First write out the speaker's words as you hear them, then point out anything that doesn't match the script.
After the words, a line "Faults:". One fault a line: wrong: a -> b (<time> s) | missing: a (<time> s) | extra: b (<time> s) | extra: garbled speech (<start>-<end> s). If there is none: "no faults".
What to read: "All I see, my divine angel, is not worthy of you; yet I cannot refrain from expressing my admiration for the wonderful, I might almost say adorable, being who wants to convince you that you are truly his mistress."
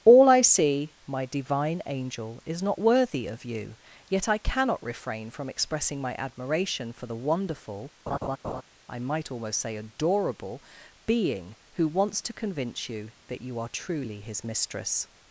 "All I see, my divine angel, is not worthy of you; yet I cannot refrain from expressing my admiration for the wonderful, I might almost say adorable, being who wants to convince you that you are truly his mistress."
Faults:
no faults